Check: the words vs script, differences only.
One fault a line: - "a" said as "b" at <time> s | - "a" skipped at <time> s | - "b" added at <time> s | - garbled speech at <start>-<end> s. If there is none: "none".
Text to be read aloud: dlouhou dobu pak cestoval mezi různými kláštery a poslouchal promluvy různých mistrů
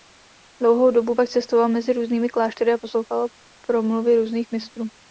none